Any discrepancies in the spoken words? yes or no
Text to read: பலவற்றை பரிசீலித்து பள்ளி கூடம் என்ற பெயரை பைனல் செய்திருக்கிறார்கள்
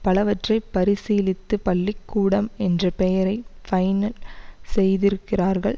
no